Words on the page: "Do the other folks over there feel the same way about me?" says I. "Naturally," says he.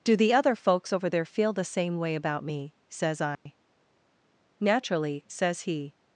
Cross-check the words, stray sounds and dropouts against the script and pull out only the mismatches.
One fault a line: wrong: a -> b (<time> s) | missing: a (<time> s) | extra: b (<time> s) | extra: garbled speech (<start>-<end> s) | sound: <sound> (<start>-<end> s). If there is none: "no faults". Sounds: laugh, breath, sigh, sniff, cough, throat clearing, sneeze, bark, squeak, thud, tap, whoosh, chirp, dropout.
sound: dropout (3.3-3.5 s)